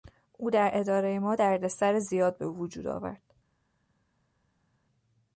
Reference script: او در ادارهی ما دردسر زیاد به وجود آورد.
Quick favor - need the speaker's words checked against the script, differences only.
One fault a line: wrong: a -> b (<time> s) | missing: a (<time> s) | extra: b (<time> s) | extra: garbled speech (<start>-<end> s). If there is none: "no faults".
no faults